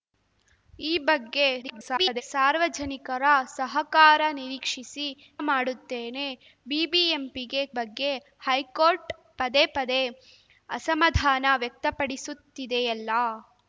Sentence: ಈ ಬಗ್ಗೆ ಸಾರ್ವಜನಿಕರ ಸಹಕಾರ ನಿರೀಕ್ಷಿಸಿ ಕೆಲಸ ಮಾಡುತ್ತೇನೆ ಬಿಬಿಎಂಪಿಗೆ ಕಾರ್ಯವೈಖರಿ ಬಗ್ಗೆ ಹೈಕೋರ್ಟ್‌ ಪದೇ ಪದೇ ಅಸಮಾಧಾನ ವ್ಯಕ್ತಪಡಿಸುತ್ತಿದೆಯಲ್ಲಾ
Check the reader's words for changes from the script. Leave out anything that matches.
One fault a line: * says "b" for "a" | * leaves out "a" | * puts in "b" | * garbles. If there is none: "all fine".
* garbles
* leaves out "ಕೆಲಸ"
* leaves out "ಕಾರ್ಯವೈಖರಿ"